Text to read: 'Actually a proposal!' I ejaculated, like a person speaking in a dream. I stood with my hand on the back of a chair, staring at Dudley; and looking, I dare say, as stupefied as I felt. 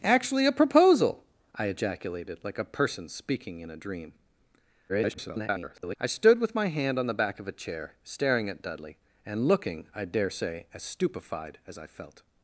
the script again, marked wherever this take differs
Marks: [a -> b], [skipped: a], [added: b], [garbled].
'Actually a proposal!' I ejaculated, like a person speaking in a dream. [garbled] I stood with my hand on the back of a chair, staring at Dudley; and looking, I dare say, as stupefied as I felt.